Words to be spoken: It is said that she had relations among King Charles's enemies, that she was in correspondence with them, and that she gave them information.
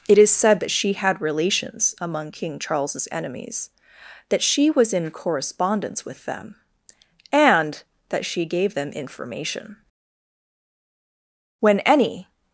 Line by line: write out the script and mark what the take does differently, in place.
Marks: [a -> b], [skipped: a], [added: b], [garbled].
It is said that she had relations among King Charles's enemies, that she was in correspondence with them, and that she gave them information. [added: When any]